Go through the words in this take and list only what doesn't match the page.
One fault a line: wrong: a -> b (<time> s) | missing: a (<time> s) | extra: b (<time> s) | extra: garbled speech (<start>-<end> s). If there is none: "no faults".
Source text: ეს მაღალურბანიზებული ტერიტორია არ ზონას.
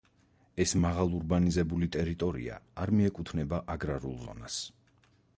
extra: მიეკუთვნება აგრარულ (3.0 s)